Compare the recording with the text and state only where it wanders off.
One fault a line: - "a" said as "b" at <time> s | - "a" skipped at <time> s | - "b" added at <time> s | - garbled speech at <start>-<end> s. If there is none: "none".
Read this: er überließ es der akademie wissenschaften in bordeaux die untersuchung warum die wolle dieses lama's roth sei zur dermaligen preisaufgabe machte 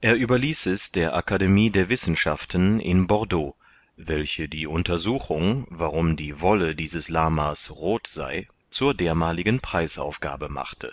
- "der" added at 1.7 s
- "welche" added at 4.0 s